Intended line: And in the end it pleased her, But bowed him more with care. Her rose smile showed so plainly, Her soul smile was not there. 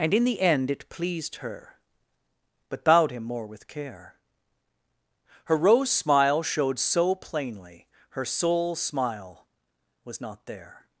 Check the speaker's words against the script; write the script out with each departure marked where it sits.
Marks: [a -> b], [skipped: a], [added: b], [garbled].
And in the end it pleased her, But bowed him more with care. Her rose smile showed so plainly, Her soul smile was not there.